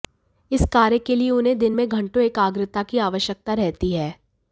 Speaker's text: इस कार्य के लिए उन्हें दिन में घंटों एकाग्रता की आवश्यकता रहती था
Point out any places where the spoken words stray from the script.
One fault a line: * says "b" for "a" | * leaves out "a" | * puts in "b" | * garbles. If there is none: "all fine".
* says "है" for "था"